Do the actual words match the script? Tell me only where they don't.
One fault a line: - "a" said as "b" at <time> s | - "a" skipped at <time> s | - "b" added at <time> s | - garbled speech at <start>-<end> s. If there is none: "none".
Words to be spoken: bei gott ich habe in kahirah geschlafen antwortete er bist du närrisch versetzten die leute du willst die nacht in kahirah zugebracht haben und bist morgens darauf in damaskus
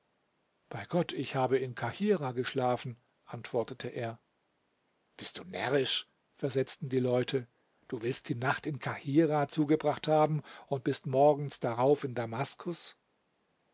none